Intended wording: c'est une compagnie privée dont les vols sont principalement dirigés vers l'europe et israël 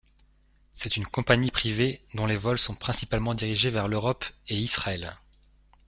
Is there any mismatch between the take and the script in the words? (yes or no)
no